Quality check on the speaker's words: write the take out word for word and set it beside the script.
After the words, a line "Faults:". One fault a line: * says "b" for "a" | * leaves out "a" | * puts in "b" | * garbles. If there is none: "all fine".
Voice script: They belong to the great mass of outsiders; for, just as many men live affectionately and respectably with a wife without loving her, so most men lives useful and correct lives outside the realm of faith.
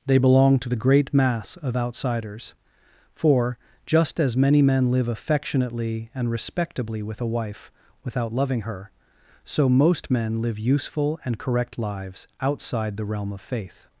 They belong to the great mass of outsiders; for, just as many men live affectionately and respectably with a wife without loving her, so most men live useful and correct lives outside the realm of faith.
Faults:
* says "live" for "lives"